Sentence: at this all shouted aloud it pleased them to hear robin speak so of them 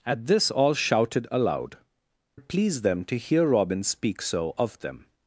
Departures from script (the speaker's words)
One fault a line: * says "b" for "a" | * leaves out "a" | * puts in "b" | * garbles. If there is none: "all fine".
all fine